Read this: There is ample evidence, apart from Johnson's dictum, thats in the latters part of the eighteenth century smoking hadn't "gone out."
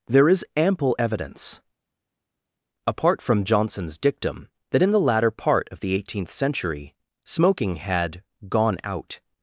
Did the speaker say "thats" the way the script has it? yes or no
no